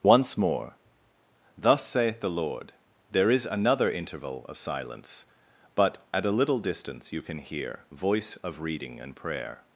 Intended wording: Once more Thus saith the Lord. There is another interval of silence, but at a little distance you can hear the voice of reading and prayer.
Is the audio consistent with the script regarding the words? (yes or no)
no